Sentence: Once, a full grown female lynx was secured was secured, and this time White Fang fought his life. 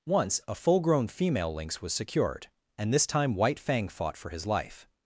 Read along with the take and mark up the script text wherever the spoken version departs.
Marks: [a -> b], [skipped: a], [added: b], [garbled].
Once, a full grown female lynx was secured [skipped: was secured,] and this time White Fang fought [added: for] his life.